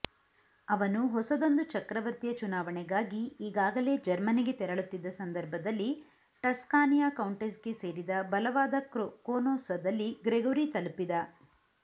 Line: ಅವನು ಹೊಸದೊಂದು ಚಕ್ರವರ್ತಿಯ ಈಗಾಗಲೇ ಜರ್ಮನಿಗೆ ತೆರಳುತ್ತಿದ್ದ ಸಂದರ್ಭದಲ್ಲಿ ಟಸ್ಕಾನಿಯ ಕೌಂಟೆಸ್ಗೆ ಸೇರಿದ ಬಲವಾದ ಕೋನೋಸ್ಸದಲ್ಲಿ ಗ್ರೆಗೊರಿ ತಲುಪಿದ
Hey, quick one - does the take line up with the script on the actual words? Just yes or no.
no